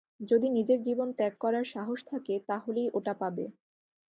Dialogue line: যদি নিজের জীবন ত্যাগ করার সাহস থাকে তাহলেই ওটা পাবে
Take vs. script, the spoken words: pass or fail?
pass